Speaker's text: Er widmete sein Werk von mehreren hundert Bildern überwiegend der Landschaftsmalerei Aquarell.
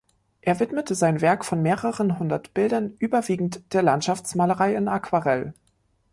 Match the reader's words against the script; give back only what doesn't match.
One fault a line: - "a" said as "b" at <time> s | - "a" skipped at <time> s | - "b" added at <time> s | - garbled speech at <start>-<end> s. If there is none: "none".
- "in" added at 4.7 s